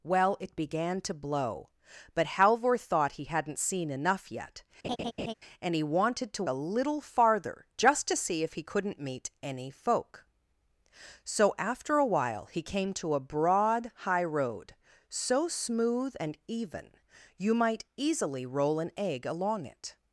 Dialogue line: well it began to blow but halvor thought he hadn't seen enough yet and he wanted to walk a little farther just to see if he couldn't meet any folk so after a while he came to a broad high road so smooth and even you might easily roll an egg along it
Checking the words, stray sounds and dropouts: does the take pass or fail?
fail